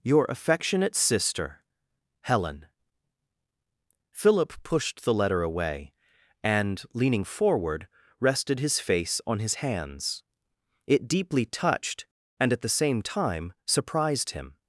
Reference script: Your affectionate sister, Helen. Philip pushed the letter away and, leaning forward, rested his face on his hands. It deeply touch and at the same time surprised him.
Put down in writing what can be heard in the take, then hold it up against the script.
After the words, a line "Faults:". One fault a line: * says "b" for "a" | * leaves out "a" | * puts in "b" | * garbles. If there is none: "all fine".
Your affectionate sister, Helen. Philip pushed the letter away and, leaning forward, rested his face on his hands. It deeply touched and at the same time surprised him.
Faults:
* says "touched" for "touch"